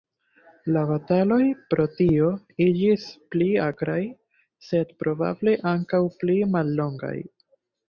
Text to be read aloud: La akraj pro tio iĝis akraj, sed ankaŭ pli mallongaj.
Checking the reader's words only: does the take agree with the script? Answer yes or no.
no